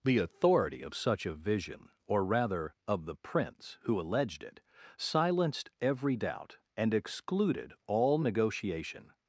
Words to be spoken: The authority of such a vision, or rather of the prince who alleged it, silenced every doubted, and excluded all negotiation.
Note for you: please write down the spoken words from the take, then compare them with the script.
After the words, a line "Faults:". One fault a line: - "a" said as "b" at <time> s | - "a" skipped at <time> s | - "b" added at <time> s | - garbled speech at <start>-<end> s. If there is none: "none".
The authority of such a vision, or rather of the prince who alleged it, silenced every doubt, and excluded all negotiation.
Faults:
- "doubted" said as "doubt" at 6.2 s